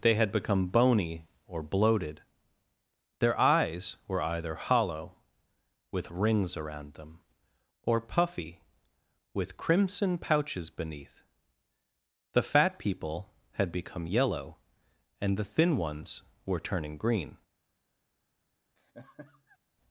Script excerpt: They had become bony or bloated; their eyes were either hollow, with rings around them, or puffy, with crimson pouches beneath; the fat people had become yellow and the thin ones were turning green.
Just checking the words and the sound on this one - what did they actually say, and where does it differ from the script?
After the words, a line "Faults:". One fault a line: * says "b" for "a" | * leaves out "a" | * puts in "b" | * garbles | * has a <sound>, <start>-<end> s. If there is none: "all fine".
They had become bony or bloated; their eyes were either hollow, with rings around them, or puffy, with crimson pouches beneath; the fat people had become yellow and the thin ones were turning green.
Faults:
* has a laugh, 18.8-19.6 s